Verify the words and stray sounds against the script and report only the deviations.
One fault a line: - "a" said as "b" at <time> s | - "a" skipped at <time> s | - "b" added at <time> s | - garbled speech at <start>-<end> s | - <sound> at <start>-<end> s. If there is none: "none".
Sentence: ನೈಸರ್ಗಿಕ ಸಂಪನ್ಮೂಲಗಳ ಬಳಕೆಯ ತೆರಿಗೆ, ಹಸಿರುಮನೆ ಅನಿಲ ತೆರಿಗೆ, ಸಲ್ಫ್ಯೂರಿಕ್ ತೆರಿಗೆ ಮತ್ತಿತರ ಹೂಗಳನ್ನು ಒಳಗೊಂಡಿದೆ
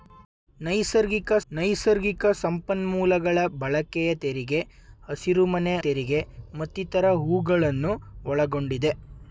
- "ನೈಸರ್ಗಿಕ" added at 1.5 s
- "ಅನಿಲ ತೆರಿಗೆ ಸಲ್ಫ್ಯೂರಿಕ್" skipped at 5.7 s